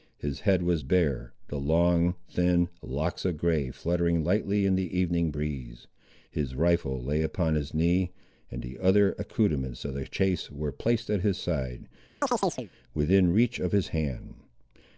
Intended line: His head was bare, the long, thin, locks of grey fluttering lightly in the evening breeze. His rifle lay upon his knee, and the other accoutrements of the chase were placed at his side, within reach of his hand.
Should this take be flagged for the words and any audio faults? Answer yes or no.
yes